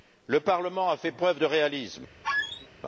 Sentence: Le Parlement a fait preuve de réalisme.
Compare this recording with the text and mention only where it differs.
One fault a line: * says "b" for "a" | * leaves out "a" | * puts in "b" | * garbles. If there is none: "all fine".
all fine